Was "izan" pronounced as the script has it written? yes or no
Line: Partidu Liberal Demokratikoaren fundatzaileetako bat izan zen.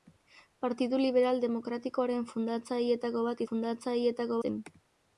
no